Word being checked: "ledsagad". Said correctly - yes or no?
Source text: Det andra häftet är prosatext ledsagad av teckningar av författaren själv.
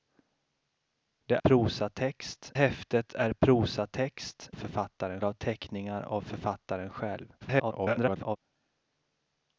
no